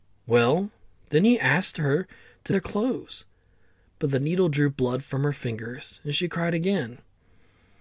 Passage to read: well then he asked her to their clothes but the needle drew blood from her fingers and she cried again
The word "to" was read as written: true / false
true